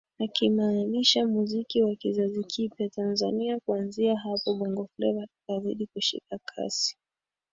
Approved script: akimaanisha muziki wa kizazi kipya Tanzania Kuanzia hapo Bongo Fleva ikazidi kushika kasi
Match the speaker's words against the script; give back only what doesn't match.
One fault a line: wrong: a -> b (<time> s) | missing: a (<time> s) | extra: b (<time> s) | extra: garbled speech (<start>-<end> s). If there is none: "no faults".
no faults